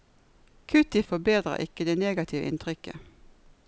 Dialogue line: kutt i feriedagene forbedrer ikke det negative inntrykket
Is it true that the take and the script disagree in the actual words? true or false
true